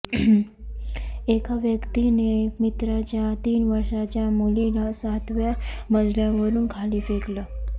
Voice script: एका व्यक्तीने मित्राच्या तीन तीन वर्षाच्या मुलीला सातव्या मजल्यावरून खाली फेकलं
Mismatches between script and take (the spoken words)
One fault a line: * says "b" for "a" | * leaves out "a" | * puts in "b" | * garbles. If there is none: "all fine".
* leaves out "तीन"